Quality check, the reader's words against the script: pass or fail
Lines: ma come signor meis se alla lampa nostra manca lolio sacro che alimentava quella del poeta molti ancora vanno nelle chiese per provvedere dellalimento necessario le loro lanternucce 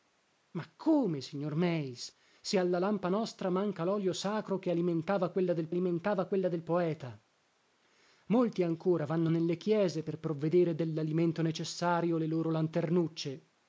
fail